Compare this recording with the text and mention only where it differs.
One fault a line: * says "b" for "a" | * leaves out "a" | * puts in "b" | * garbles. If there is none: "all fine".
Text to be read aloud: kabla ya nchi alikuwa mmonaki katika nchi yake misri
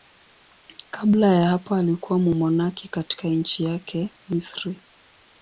* says "hapo" for "nchi"